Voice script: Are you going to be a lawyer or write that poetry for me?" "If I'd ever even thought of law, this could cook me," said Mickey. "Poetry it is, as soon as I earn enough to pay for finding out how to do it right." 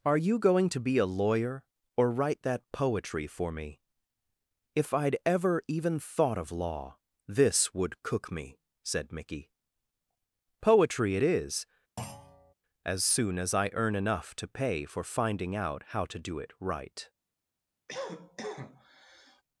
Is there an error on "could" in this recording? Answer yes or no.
yes